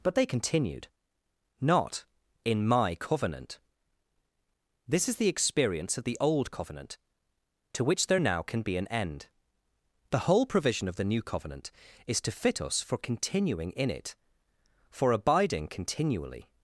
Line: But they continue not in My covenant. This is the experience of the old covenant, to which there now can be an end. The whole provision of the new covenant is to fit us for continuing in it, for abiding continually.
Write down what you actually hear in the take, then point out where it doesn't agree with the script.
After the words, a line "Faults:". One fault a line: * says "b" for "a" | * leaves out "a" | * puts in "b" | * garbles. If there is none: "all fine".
But they continued not in My covenant. This is the experience of the old covenant, to which there now can be an end. The whole provision of the new covenant is to fit us for continuing in it, for abiding continually.
Faults:
* says "continued" for "continue"